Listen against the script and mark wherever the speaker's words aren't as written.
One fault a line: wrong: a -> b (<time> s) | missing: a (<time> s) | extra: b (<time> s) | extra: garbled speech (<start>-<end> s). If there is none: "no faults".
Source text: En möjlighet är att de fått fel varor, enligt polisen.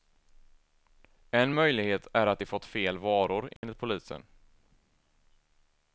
no faults